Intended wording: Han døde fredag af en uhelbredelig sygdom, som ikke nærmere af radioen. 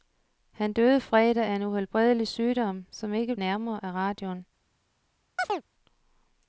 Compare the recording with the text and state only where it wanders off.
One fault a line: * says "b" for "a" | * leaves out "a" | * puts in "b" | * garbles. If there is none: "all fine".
all fine